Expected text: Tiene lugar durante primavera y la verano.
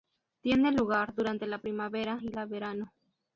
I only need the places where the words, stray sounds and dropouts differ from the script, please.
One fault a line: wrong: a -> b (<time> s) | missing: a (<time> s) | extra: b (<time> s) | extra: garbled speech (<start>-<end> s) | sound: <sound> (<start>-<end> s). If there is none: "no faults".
extra: la (1.4 s)